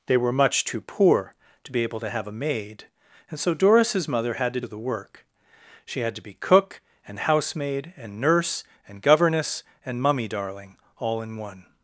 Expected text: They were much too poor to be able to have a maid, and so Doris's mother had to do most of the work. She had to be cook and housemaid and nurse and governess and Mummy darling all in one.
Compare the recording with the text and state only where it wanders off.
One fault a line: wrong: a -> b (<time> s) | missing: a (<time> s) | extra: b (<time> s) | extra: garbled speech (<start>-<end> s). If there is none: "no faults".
missing: do most (4.6 s)